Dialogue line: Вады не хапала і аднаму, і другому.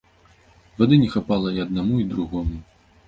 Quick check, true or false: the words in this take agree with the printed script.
true